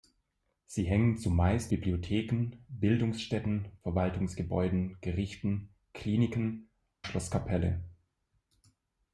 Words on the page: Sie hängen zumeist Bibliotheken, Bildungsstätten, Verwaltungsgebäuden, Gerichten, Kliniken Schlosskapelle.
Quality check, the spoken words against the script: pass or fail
pass